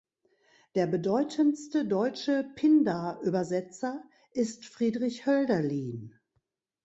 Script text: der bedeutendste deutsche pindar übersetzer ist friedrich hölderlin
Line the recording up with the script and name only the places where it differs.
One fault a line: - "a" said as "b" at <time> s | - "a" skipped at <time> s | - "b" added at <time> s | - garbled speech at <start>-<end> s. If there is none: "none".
none